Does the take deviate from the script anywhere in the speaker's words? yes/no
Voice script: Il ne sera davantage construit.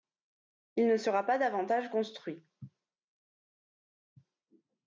yes